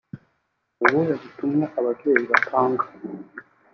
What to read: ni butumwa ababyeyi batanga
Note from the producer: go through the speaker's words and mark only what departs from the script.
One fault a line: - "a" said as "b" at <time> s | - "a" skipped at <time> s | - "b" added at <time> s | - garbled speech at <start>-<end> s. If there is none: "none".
- "ubuhe" added at 0.8 s